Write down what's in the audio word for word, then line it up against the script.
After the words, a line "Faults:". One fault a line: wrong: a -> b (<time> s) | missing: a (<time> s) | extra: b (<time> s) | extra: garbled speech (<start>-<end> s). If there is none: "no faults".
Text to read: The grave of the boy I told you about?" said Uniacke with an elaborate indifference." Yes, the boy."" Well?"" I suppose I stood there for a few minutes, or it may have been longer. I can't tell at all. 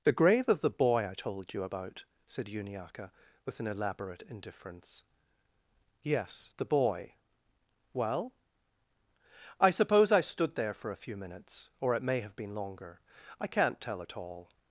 The grave of the boy I told you about?" said Uniacke with an elaborate indifference." Yes, the boy."" Well?"" I suppose I stood there for a few minutes, or it may have been longer. I can't tell at all.
Faults:
no faults